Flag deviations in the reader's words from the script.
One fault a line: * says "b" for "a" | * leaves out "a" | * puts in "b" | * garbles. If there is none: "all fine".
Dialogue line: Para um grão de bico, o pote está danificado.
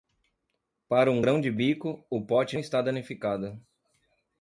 all fine